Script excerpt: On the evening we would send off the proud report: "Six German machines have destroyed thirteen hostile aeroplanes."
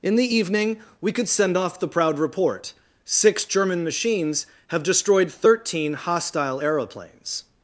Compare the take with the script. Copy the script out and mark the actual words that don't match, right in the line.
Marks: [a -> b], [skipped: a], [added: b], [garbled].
[On -> In] the evening we [would -> could] send off the proud report: "Six German machines have destroyed thirteen hostile aeroplanes."